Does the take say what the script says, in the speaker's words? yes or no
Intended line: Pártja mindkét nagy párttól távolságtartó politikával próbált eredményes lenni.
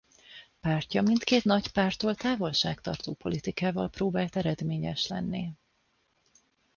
yes